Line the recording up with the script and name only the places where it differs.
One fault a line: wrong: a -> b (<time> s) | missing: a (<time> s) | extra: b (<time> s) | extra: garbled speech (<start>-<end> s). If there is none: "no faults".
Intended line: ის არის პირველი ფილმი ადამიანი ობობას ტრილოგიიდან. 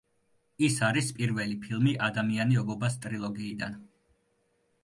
no faults